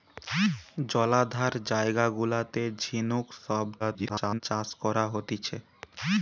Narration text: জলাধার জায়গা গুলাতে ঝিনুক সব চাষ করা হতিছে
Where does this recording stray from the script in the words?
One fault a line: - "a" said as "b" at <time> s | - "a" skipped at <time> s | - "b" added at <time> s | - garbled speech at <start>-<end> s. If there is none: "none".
- garbled speech at 3.8-4.4 s